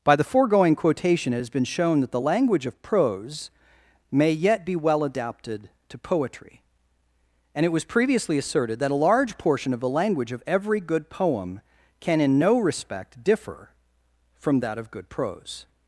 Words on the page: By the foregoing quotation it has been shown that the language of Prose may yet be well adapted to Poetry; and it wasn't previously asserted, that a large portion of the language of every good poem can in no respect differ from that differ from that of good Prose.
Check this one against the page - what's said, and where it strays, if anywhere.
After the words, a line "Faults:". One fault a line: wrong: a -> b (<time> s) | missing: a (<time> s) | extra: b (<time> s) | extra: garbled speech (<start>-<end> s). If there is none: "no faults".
By the foregoing quotation it has been shown that the language of Prose may yet be well adapted to Poetry; and it was previously asserted, that a large portion of the language of every good poem can in no respect differ from that of good Prose.
Faults:
wrong: wasn't -> was (7.7 s)
missing: differ from that (14.8 s)